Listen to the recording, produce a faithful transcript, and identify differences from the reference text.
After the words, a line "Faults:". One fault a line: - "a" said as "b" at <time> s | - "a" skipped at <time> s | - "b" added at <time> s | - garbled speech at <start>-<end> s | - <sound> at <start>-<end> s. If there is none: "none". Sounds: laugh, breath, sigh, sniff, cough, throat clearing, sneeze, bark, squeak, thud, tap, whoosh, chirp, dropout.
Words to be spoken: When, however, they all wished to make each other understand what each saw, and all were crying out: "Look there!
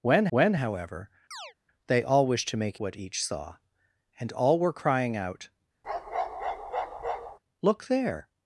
When when, however, they all wished to make what each saw, and all were crying out: "Look there!
Faults:
- "when" added at 0.3 s
- chirp at 1.3-1.5 s
- "each other understand" skipped at 2.8 s
- bark at 5.8-7.4 s